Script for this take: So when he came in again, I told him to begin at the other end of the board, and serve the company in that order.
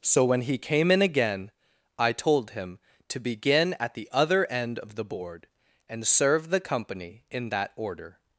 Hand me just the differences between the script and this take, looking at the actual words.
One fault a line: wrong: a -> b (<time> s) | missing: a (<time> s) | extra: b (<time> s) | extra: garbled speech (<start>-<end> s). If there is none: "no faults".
no faults